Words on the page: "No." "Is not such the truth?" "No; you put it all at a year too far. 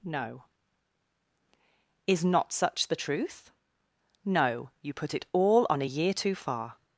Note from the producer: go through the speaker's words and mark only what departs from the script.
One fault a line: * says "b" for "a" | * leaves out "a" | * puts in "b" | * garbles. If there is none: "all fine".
* says "on" for "at"